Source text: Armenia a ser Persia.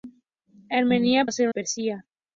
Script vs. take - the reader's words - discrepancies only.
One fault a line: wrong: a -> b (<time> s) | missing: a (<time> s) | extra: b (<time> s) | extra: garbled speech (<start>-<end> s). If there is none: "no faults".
no faults